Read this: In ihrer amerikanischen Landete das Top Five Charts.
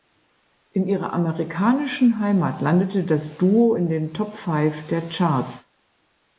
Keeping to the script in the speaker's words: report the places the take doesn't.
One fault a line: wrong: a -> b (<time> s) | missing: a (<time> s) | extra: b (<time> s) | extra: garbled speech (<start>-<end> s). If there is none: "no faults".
extra: Heimat (2.2 s)
extra: Duo in den (3.4 s)
extra: der (4.9 s)